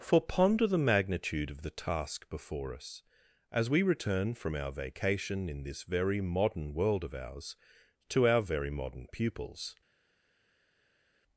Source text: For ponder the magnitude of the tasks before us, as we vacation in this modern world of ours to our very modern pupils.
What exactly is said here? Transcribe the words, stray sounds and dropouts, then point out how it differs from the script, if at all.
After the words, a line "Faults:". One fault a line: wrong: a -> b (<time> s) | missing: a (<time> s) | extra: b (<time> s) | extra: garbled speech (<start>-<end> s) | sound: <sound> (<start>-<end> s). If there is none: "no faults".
For ponder the magnitude of the task before us, as we return from our vacation in this very modern world of ours to our very modern pupils.
Faults:
wrong: tasks -> task (1.7 s)
extra: return from our (3.8 s)
extra: very (5.8 s)